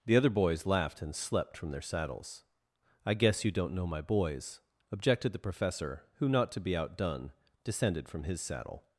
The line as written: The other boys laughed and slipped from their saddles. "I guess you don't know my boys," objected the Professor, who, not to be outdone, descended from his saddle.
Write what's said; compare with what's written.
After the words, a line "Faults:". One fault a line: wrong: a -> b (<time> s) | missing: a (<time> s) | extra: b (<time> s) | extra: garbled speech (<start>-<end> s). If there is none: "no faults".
The other boys laughed and slept from their saddles. "I guess you don't know my boys," objected the Professor, who, not to be outdone, descended from his saddle.
Faults:
wrong: slipped -> slept (1.1 s)